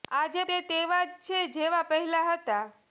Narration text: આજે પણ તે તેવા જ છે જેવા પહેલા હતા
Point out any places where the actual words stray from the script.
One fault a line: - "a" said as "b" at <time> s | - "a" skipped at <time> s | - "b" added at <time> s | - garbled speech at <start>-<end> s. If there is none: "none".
- "પણ" skipped at 0.4 s